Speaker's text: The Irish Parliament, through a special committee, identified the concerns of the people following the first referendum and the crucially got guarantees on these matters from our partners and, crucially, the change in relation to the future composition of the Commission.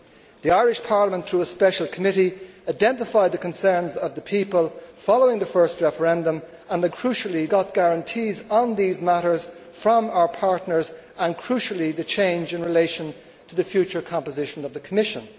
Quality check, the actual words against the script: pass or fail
pass